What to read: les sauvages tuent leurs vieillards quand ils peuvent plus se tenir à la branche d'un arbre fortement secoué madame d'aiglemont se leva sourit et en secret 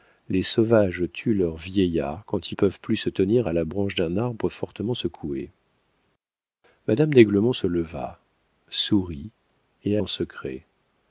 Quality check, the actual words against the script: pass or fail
pass